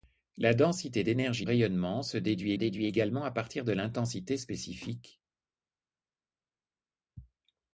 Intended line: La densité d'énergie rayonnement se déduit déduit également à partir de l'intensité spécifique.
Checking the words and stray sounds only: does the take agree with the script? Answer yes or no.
yes